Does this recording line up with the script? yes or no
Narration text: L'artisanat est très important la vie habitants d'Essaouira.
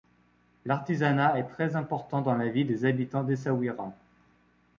no